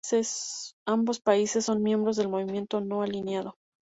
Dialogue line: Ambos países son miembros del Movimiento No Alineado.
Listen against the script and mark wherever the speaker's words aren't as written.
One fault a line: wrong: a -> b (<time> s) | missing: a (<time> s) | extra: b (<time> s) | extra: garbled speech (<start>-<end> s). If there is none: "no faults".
no faults